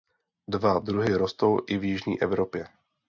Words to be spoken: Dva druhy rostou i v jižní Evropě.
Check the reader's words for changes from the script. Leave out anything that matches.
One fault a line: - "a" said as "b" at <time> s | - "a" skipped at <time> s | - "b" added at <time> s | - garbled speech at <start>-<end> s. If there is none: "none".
none